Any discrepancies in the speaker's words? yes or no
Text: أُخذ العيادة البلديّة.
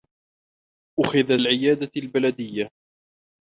no